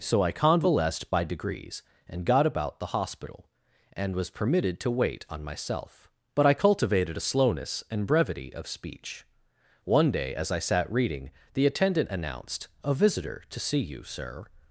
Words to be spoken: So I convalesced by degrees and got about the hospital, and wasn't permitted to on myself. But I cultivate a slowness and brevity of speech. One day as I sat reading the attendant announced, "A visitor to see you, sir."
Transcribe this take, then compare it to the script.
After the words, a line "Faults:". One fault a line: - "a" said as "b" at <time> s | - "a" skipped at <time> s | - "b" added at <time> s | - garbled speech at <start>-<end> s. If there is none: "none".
So I convalesced by degrees and got about the hospital, and was permitted to wait on myself. But I cultivated a slowness and brevity of speech. One day as I sat reading the attendant announced, "A visitor to see you, sir."
Faults:
- "wasn't" said as "was" at 4.2 s
- "wait" added at 4.9 s
- "cultivate" said as "cultivated" at 6.5 s